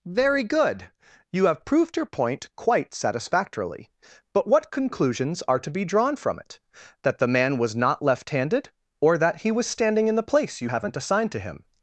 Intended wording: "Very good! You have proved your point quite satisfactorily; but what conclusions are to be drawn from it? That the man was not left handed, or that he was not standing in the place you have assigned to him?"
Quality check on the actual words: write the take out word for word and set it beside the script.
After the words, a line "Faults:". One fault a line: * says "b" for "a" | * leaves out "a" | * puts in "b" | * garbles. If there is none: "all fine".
"Very good! You have proved your point quite satisfactorily; but what conclusions are to be drawn from it? That the man was not left handed, or that he was standing in the place you haven't assigned to him?"
Faults:
* leaves out "not"
* says "haven't" for "have"